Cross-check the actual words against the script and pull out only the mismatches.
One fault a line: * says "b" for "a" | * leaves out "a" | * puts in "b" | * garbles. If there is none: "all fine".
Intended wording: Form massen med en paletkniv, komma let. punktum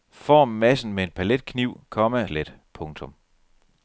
all fine